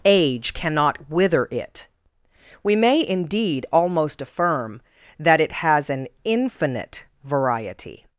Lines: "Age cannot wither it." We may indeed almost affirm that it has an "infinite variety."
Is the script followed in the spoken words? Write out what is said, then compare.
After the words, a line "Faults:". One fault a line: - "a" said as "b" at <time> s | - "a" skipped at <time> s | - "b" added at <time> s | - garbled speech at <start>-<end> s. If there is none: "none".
"Age cannot wither it." We may indeed almost affirm that it has an "infinite variety."
Faults:
none